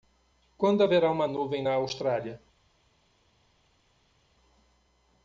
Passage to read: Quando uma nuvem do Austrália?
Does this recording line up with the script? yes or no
no